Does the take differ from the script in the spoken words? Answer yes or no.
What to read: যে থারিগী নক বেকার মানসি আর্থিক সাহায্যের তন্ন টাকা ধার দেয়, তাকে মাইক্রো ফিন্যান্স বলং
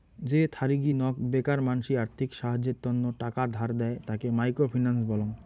no